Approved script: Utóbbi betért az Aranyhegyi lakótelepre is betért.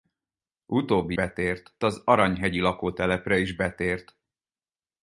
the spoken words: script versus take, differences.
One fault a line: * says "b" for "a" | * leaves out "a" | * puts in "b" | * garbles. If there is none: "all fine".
all fine